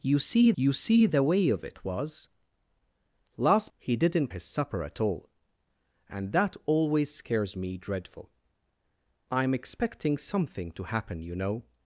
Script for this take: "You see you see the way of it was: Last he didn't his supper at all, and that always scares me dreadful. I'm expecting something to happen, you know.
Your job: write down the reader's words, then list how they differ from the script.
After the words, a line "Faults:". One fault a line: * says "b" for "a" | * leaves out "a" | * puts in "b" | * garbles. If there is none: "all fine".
"You see you see the way of it was: Last he didn't his supper at all, and that always scares me dreadful. I'm expecting something to happen, you know.
Faults:
all fine